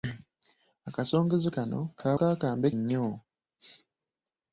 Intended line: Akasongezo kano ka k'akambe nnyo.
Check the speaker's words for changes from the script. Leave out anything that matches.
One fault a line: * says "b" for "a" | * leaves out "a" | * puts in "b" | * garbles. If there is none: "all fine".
all fine